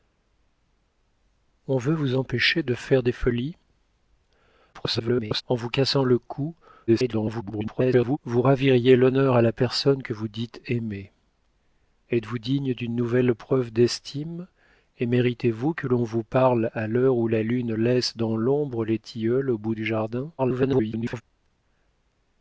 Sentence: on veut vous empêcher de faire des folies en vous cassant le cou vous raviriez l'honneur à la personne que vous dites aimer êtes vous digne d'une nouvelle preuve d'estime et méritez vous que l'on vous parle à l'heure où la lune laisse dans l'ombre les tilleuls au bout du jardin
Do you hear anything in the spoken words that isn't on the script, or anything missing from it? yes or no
yes